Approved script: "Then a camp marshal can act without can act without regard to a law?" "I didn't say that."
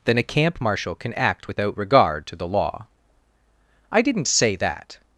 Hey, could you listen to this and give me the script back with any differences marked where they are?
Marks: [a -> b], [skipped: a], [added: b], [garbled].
"Then a camp marshal can act without [skipped: can act without] regard to [a -> the] law?" "I didn't say that."